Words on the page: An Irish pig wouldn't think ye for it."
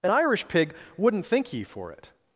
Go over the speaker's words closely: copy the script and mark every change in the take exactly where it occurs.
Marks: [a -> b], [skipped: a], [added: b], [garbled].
An Irish pig wouldn't think ye for it."